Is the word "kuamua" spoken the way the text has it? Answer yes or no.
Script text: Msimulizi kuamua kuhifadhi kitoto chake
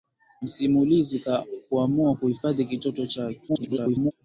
yes